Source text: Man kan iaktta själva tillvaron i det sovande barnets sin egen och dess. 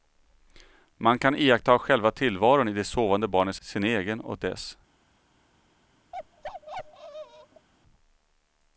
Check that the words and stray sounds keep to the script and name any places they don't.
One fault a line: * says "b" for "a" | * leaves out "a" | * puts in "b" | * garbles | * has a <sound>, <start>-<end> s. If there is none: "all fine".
* has a bark, 6.1-7.7 s